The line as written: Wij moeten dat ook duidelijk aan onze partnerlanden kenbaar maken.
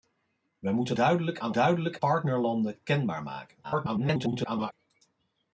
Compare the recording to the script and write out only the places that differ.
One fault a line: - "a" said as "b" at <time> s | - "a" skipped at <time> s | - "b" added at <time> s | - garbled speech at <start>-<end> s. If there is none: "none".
- "dat ook" skipped at 0.9 s
- "onze" said as "duidelijk" at 1.5 s
- garbled speech at 3.6-4.7 s